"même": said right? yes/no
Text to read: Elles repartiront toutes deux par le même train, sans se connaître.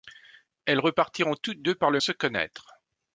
no